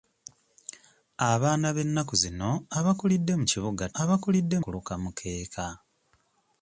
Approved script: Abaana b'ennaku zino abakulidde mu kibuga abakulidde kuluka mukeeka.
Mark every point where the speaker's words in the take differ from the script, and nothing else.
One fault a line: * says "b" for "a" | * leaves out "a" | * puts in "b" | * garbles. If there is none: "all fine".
all fine